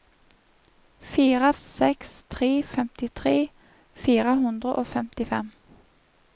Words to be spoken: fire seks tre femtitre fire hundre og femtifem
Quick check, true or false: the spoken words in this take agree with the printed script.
true